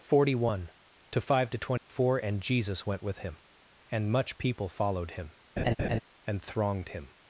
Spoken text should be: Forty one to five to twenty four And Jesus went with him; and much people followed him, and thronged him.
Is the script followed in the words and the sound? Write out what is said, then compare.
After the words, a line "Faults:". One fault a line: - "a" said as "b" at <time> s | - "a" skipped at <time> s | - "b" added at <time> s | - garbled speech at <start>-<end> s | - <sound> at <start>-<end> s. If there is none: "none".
Forty one to five to twenty four And Jesus went with him; and much people followed him, and thronged him.
Faults:
- dropout at 1.8-1.9 s
- laugh at 5.6-6.0 s